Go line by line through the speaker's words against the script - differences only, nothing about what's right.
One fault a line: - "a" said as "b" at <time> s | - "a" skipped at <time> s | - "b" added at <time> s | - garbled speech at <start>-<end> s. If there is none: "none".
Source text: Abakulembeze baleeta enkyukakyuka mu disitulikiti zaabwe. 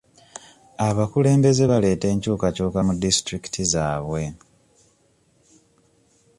none